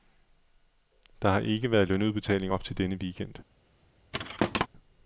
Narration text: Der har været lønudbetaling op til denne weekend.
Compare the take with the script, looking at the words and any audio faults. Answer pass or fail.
fail